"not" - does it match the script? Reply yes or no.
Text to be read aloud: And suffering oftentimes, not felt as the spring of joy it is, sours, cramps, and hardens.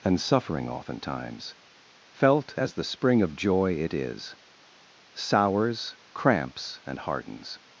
no